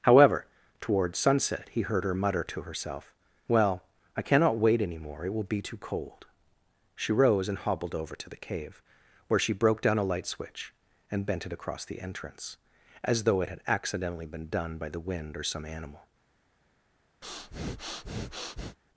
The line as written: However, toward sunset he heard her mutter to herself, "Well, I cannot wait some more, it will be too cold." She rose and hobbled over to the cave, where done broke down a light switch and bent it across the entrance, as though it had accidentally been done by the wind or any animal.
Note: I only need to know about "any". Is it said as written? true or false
false